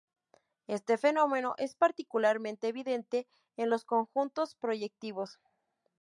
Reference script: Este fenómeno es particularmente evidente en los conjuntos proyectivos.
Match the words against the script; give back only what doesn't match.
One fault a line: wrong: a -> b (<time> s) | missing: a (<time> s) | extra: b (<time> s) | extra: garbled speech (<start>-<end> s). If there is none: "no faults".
no faults